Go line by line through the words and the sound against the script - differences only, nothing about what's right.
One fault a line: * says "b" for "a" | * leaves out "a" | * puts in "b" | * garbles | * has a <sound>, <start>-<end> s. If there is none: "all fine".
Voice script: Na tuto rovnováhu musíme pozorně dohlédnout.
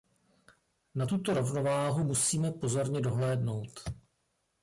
all fine